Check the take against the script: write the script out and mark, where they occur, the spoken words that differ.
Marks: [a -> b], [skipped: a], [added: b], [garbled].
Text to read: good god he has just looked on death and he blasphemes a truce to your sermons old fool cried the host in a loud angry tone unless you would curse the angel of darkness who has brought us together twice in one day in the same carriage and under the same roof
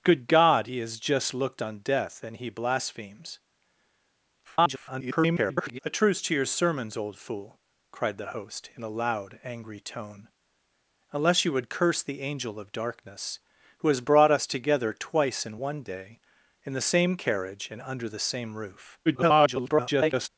good god he has just looked on death and he blasphemes [garbled] a truce to your sermons old fool cried the host in a loud angry tone unless you would curse the angel of darkness who has brought us together twice in one day in the same carriage and under the same roof [garbled]